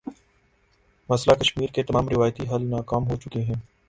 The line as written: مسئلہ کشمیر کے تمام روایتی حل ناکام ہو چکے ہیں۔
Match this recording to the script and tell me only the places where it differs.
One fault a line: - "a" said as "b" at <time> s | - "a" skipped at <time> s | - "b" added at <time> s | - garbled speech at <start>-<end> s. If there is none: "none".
none